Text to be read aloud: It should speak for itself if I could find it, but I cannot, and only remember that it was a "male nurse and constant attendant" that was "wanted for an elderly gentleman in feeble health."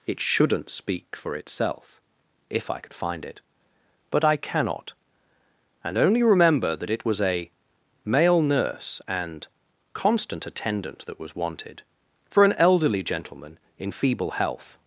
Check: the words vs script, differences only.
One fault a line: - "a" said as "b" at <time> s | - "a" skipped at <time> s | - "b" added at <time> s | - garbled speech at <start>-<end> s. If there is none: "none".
- "should" said as "shouldn't" at 0.2 s